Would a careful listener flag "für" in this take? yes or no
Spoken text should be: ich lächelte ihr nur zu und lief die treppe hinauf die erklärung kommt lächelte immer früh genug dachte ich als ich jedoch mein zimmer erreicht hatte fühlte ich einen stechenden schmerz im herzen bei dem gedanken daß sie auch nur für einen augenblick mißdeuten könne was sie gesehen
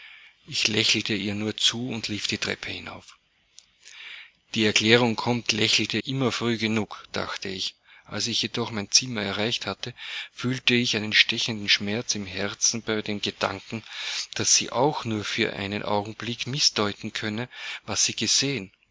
no